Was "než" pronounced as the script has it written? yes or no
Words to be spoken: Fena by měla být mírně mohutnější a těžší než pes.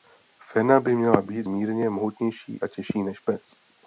yes